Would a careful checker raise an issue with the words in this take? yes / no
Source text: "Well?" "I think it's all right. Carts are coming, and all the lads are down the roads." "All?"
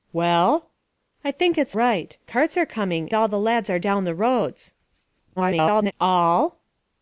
yes